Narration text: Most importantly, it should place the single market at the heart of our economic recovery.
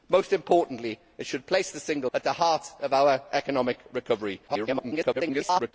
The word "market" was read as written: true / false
false